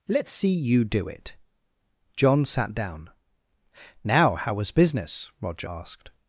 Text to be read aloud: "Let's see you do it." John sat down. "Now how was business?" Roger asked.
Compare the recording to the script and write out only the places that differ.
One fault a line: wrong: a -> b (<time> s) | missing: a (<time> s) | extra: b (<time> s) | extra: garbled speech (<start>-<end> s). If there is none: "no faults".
no faults